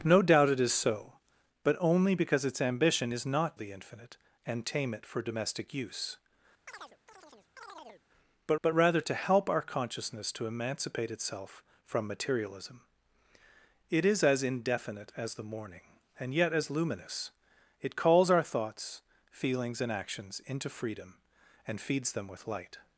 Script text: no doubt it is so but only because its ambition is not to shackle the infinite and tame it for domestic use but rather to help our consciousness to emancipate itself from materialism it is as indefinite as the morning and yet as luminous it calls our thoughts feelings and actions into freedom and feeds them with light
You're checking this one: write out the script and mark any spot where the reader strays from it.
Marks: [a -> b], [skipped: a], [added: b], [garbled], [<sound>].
no doubt it is so but only because its ambition is not [skipped: to shackle] the infinite and tame it for domestic use [chirp] but [added: but] rather to help our consciousness to emancipate itself from materialism it is as indefinite as the morning and yet as luminous it calls our thoughts feelings and actions into freedom and feeds them with light